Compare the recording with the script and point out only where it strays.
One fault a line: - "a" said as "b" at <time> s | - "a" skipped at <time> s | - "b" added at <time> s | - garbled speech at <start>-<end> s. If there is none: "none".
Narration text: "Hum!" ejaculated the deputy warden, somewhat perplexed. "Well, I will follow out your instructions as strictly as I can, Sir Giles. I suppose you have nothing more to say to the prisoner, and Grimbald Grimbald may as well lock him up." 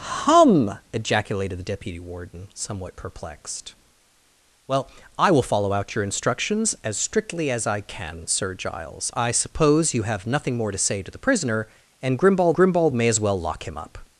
none